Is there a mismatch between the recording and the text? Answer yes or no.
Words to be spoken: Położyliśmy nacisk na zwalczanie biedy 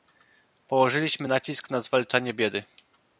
no